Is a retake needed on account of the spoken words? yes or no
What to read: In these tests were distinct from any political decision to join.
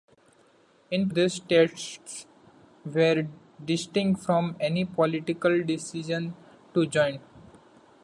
no